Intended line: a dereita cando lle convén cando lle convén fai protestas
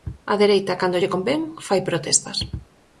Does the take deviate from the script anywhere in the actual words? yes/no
yes